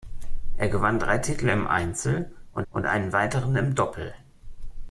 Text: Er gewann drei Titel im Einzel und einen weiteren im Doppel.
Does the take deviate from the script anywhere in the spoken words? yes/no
yes